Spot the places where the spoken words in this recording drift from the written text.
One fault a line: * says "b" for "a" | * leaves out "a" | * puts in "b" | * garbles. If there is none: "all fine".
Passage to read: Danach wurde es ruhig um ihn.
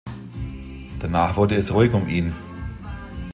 all fine